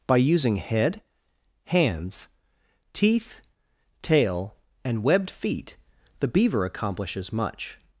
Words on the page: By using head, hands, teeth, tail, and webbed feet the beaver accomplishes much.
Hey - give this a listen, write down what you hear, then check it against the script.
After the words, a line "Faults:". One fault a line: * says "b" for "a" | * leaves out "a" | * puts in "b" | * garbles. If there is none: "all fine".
By using head, hands, teeth, tail, and webbed feet the beaver accomplishes much.
Faults:
all fine